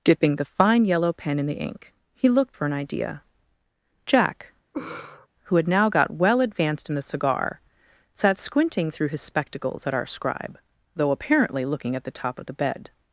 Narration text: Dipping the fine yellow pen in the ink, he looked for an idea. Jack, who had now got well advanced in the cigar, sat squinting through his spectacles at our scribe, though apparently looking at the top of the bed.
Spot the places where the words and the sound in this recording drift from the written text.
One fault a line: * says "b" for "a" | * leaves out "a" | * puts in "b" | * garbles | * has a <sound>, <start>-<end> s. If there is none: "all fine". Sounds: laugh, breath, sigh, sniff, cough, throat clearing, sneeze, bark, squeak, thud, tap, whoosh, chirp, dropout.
* has a laugh, 4.7-5.3 s